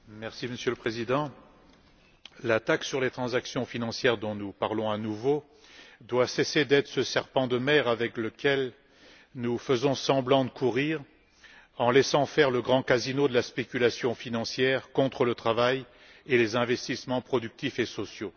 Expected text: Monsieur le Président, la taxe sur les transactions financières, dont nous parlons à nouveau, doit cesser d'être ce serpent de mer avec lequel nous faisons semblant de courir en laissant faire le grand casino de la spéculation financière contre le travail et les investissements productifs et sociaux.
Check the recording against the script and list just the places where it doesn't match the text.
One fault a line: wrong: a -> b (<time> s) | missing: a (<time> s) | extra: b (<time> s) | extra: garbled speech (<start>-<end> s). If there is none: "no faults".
no faults